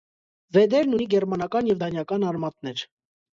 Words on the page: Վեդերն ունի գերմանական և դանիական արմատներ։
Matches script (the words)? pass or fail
pass